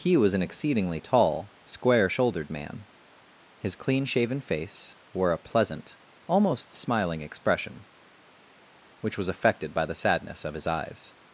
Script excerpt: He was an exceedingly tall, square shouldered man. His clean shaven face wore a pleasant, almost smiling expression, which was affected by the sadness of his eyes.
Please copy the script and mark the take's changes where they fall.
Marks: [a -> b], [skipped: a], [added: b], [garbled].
He was an exceedingly tall, square shouldered man. His clean shaven face wore a pleasant, almost smiling expression, which was affected by the sadness of his eyes.